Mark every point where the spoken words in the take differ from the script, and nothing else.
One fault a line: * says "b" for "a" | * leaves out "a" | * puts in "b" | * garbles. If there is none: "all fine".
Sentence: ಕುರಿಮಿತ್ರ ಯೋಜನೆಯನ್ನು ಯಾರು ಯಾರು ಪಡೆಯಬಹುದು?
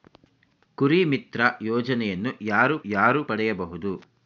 all fine